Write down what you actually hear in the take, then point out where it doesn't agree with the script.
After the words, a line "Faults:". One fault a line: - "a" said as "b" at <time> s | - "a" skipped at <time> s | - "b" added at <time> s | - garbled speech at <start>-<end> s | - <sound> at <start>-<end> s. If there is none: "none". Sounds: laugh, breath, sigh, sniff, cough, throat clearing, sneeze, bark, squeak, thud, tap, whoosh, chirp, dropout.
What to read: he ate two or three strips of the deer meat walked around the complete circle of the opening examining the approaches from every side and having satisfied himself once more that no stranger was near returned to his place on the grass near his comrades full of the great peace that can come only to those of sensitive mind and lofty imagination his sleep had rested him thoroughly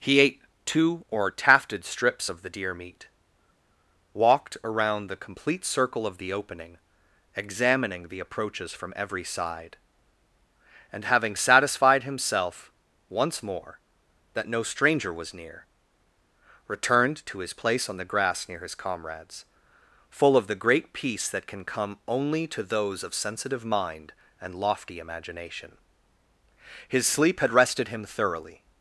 he ate two or tafted strips of the deer meat walked around the complete circle of the opening examining the approaches from every side and having satisfied himself once more that no stranger was near returned to his place on the grass near his comrades full of the great peace that can come only to those of sensitive mind and lofty imagination his sleep had rested him thoroughly
Faults:
- "three" said as "tafted" at 1.3 s